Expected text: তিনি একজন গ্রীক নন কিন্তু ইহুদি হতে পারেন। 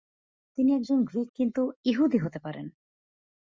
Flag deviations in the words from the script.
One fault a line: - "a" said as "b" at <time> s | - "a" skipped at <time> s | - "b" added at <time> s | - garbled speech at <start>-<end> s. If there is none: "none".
- "নন" skipped at 1.3 s